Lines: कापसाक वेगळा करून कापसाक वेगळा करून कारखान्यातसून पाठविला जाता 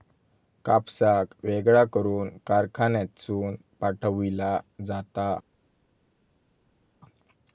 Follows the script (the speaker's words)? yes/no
no